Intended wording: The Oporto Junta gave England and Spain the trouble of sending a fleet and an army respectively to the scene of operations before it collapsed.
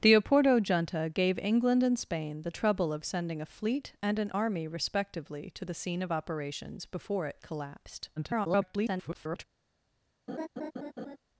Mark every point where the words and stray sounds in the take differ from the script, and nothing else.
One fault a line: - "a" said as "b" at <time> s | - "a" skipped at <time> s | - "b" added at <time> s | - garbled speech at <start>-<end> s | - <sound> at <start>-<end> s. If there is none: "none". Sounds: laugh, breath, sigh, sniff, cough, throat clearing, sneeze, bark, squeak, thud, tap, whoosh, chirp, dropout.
- garbled speech at 8.2-9.4 s
- laugh at 10.3-11.2 s